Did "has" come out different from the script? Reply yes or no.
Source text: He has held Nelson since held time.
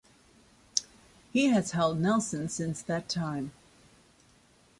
no